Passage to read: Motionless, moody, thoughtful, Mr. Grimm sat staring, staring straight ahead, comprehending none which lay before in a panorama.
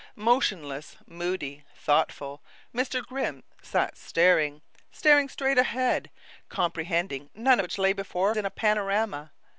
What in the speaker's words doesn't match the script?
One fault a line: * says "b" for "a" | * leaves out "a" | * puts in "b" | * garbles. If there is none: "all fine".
all fine